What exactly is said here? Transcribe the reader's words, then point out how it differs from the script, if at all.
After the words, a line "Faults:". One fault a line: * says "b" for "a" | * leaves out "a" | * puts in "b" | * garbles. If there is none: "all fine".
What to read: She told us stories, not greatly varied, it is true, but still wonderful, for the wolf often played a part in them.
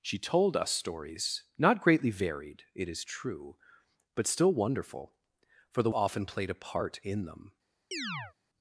She told us stories, not greatly varied, it is true, but still wonderful, for the often played a part in them.
Faults:
* leaves out "wolf"